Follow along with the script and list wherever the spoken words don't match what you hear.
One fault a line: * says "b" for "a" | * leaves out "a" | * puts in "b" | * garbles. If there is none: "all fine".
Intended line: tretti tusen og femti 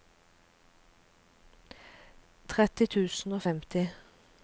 all fine